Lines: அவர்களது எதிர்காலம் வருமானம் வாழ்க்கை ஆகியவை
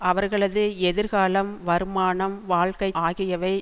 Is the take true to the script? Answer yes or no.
yes